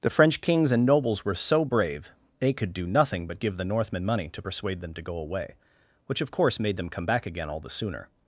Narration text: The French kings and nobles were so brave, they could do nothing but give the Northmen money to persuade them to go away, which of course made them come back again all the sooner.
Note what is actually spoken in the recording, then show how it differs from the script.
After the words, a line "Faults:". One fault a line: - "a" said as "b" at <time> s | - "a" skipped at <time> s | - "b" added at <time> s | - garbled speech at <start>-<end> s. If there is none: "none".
The French kings and nobles were so brave, they could do nothing but give the Northmen money to persuade them to go away, which of course made them come back again all the sooner.
Faults:
none